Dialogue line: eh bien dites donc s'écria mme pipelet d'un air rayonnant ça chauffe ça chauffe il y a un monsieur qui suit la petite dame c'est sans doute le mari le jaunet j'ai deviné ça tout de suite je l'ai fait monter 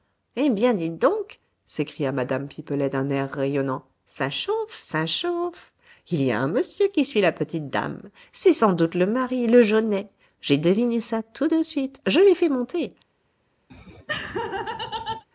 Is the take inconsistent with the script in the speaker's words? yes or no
no